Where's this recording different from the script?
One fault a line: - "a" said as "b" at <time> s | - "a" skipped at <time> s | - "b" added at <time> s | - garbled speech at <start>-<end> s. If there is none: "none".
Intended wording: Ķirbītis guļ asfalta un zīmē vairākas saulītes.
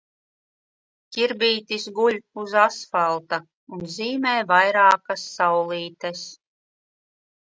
- "uz" added at 2.4 s